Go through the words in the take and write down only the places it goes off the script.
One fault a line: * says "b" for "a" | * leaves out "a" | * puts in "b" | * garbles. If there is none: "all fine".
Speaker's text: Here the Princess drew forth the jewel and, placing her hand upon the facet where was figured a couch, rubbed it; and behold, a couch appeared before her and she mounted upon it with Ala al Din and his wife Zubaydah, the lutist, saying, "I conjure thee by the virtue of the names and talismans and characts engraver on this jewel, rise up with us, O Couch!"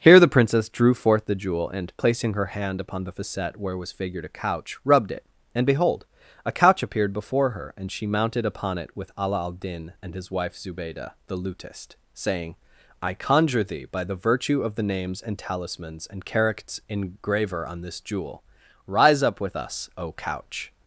all fine